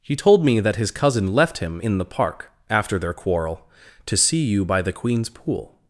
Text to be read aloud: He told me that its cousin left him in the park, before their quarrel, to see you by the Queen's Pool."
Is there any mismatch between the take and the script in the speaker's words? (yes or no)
yes